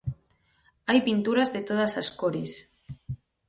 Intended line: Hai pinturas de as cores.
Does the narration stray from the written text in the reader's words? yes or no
yes